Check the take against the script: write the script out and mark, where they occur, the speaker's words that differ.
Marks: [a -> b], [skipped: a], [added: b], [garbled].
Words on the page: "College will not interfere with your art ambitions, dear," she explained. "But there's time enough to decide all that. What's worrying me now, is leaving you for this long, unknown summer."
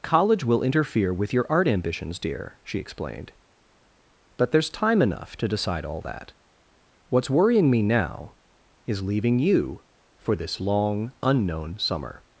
"College will [skipped: not] interfere with your art ambitions, dear," she explained. "But there's time enough to decide all that. What's worrying me now, is leaving you for this long, unknown summer."